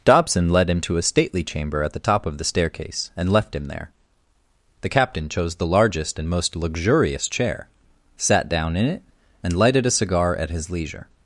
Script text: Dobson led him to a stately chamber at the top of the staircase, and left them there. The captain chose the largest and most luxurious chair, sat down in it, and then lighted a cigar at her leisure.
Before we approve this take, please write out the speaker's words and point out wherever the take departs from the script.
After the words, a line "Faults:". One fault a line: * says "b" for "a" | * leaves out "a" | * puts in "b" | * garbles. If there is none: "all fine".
Dobson led him to a stately chamber at the top of the staircase, and left him there. The captain chose the largest and most luxurious chair, sat down in it, and lighted a cigar at his leisure.
Faults:
* says "him" for "them"
* leaves out "then"
* says "his" for "her"